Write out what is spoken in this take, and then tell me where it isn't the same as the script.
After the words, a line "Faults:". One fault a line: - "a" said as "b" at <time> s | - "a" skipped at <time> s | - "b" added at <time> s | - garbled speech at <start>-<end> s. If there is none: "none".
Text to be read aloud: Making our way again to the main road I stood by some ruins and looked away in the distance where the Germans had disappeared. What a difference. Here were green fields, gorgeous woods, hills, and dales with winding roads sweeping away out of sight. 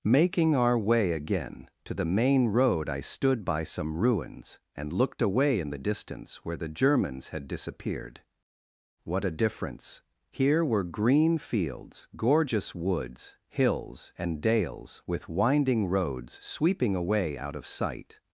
Making our way again to the main road I stood by some ruins and looked away in the distance where the Germans had disappeared. What a difference. Here were green fields, gorgeous woods, hills, and dales with winding roads sweeping away out of sight.
Faults:
none